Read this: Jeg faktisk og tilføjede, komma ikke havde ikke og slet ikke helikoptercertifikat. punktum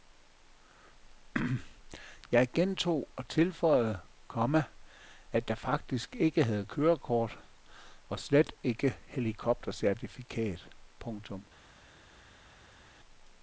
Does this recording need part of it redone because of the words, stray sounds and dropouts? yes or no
yes